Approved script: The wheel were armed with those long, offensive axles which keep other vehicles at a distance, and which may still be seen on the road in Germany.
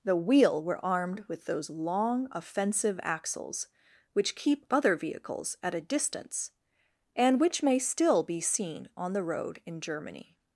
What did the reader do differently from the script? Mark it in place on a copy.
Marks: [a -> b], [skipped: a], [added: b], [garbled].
The wheel were armed with those long, offensive axles which keep other vehicles at a distance, and which may still be seen on the road in Germany.